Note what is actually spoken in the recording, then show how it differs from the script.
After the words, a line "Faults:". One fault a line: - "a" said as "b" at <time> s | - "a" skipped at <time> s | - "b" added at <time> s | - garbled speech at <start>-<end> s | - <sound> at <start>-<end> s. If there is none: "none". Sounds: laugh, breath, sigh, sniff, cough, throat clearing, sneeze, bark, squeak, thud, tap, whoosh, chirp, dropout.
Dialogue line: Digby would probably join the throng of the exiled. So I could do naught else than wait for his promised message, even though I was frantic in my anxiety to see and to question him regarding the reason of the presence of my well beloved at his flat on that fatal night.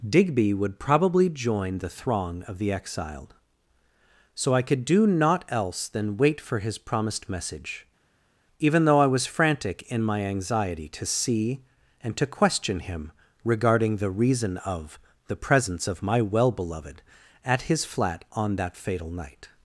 Digby would probably join the throng of the exiled. So I could do naught else than wait for his promised message, even though I was frantic in my anxiety to see and to question him regarding the reason of the presence of my well beloved at his flat on that fatal night.
Faults:
none